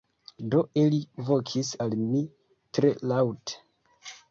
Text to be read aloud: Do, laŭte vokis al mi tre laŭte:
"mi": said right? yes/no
yes